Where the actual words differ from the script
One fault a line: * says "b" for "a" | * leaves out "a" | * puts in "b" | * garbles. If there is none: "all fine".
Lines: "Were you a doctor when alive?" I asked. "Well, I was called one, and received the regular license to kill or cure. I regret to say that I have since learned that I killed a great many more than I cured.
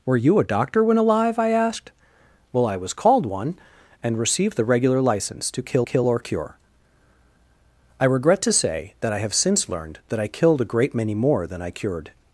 * puts in "kill"